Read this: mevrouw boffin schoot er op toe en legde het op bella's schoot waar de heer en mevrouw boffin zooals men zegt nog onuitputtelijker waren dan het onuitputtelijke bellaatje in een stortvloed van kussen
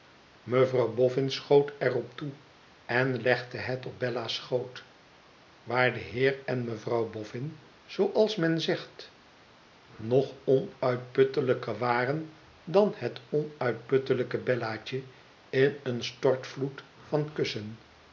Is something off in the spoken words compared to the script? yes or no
no